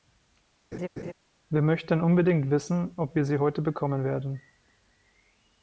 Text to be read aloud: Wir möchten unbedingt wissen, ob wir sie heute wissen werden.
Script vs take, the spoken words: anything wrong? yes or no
yes